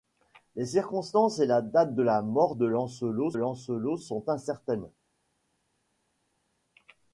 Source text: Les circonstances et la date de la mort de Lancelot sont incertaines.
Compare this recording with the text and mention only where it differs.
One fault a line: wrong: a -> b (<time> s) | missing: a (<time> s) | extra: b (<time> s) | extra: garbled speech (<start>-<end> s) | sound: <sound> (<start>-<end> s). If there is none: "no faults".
extra: Lancelot (3.3 s)